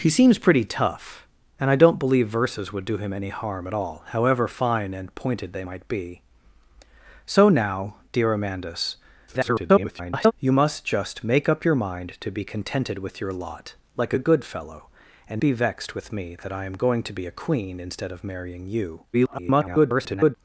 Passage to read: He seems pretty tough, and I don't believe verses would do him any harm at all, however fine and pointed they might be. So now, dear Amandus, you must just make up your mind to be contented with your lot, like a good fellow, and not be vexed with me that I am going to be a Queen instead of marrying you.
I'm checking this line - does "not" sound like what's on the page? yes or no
no